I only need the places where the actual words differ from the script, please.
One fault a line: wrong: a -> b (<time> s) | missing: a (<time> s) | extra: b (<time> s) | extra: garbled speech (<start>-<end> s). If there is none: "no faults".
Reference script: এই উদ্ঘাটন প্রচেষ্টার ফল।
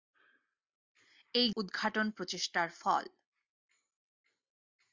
no faults